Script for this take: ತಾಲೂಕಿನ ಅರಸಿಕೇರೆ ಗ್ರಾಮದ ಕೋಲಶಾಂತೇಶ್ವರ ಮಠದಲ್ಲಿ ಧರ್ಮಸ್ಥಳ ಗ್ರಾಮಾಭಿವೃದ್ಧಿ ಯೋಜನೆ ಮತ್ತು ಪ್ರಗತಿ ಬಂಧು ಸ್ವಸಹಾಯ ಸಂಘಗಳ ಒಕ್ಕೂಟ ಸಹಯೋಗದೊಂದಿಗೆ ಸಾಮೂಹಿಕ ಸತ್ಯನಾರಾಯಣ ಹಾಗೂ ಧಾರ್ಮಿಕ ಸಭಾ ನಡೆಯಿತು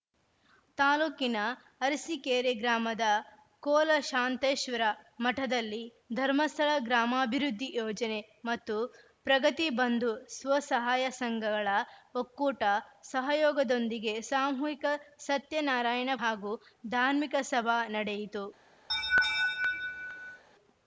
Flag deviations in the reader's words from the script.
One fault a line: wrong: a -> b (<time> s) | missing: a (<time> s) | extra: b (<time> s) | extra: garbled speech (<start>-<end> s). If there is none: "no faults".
no faults